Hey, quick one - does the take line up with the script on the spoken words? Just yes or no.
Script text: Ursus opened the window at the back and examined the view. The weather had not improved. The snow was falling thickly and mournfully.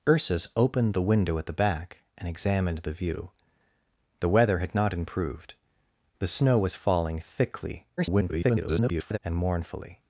no